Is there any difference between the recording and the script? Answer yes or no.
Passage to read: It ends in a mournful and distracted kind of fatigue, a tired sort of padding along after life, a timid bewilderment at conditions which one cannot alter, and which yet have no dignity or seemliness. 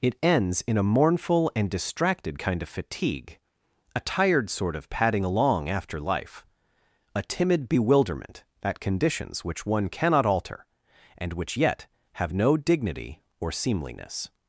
no